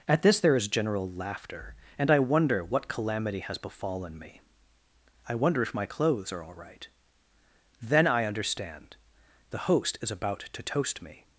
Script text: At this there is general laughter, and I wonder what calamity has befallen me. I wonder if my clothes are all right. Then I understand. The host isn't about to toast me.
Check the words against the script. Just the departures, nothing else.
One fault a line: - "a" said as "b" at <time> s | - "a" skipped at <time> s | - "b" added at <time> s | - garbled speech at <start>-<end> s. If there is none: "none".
- "isn't" said as "is" at 10.0 s